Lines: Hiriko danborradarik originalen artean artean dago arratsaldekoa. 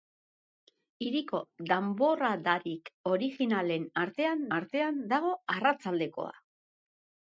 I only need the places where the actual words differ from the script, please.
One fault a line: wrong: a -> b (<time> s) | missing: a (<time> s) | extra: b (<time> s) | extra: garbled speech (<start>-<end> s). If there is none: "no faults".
no faults